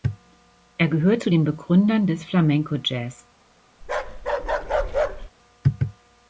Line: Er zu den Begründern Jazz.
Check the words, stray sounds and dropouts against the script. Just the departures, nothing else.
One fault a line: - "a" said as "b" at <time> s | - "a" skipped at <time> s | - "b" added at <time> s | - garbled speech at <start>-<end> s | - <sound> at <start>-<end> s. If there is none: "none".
- "gehört" added at 0.9 s
- "des Flamenco" added at 2.1 s
- bark at 3.8-5.3 s